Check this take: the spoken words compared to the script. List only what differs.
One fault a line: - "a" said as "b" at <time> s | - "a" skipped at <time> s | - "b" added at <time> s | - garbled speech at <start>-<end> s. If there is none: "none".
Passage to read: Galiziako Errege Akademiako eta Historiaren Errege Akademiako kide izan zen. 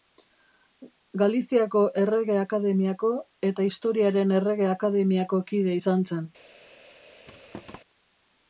none